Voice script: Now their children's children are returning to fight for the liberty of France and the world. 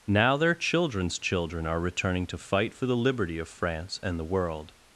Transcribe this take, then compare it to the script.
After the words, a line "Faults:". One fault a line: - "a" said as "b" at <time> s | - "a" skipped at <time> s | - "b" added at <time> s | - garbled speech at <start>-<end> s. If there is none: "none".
Now their children's children are returning to fight for the liberty of France and the world.
Faults:
none